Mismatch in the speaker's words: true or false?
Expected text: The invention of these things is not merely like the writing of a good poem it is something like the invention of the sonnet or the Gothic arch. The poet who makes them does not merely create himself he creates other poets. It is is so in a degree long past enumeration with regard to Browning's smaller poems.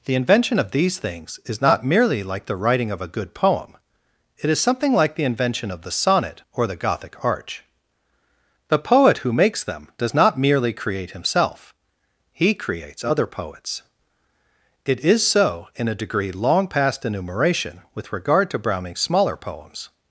true